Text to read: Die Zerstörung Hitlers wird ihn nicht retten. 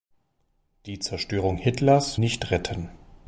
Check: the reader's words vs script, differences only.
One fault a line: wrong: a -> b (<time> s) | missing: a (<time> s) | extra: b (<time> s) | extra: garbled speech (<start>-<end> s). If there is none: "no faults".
missing: wird ihn (2.2 s)